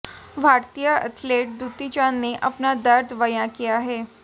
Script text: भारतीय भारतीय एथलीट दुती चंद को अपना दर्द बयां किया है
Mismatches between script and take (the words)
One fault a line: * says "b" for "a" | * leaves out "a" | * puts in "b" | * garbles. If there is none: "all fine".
* leaves out "भारतीय"
* says "ने" for "को"